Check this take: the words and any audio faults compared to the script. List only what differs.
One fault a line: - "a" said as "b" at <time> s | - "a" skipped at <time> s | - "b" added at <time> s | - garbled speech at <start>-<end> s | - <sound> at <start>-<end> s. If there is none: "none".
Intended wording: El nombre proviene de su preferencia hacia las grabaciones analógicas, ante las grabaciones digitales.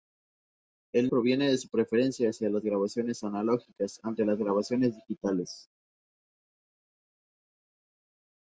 - "nombre" skipped at 1.1 s